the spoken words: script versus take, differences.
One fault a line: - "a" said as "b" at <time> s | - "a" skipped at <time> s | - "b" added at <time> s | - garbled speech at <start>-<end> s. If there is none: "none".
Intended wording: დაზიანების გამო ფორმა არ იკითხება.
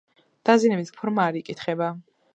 - "გამო" skipped at 0.9 s